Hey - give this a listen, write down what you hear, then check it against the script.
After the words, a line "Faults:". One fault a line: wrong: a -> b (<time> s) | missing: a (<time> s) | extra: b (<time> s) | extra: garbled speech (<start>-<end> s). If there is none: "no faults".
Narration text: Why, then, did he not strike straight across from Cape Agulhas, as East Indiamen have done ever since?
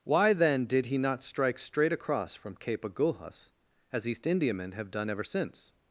Why, then, did he not strike straight across from Cape Agulhas, as East Indiamen have done ever since?
Faults:
no faults